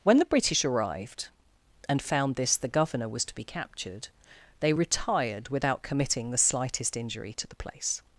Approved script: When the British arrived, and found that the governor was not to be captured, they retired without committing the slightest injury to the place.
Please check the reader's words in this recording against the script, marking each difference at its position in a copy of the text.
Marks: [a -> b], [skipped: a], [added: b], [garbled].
When the British arrived, and found [that -> this] the governor was [skipped: not] to be captured, they retired without committing the slightest injury to the place.